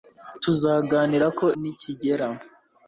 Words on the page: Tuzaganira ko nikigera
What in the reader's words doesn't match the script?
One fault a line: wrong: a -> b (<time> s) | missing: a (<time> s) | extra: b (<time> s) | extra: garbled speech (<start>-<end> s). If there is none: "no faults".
no faults